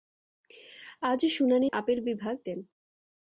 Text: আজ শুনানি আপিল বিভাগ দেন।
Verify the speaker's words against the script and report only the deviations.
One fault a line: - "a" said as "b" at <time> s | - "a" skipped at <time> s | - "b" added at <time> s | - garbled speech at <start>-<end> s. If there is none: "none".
none